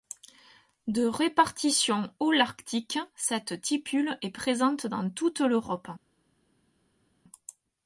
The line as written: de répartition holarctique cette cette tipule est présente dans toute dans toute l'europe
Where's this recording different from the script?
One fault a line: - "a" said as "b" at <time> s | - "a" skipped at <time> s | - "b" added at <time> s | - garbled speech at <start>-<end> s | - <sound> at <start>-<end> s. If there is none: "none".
- "cette" skipped at 3.6 s
- "dans toute" skipped at 5.4 s